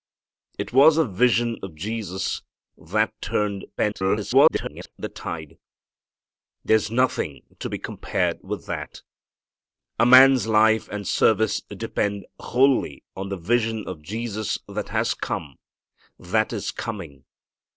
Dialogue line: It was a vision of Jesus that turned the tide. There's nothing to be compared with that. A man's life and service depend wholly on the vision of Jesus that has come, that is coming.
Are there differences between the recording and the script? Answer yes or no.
yes